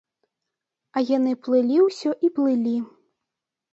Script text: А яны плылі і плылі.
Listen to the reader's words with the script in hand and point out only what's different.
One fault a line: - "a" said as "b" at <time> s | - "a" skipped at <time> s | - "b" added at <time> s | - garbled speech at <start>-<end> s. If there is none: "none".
- "ўсё" added at 1.9 s